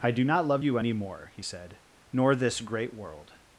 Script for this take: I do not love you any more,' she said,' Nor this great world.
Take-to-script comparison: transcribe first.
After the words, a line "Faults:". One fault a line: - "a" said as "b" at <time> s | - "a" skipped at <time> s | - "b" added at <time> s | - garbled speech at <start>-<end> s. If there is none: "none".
I do not love you any more,' he said,' Nor this great world.
Faults:
- "she" said as "he" at 1.3 s